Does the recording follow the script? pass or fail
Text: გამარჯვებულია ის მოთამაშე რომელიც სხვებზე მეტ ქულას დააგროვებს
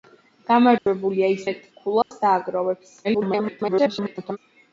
fail